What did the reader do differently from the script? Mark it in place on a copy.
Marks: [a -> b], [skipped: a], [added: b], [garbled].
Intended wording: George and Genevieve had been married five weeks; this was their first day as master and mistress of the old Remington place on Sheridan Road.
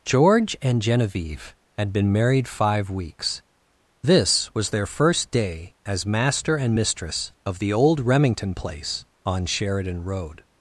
George and Genevieve had been married five weeks; this was their first day as master and mistress of the old Remington place on Sheridan Road.